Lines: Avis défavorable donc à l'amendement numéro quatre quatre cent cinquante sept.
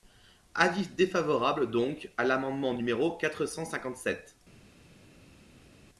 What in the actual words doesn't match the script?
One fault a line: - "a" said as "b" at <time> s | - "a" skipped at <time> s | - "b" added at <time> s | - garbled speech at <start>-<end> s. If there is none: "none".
- "quatre" skipped at 3.4 s